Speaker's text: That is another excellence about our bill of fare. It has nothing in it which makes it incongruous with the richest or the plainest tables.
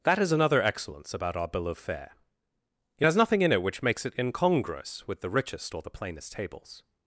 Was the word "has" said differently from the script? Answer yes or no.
no